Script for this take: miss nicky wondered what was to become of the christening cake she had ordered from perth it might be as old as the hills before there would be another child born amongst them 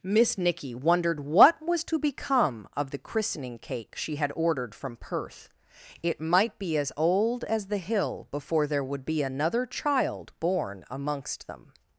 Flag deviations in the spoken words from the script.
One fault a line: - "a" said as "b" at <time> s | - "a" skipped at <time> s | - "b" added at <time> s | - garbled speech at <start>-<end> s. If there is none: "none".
- "hills" said as "hill" at 7.8 s